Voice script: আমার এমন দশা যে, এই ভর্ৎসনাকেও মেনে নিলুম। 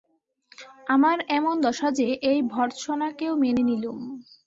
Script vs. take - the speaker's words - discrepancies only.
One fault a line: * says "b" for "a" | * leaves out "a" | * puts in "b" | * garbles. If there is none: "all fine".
all fine